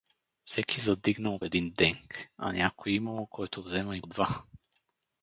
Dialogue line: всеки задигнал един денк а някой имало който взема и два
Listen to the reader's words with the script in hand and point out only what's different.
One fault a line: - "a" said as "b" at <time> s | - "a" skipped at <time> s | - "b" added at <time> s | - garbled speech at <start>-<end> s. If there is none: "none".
none